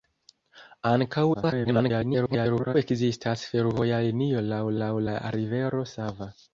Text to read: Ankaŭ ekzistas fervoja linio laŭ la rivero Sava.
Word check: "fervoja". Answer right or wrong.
right